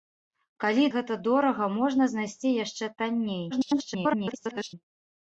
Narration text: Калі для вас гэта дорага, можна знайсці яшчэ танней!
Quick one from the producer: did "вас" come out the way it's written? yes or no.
no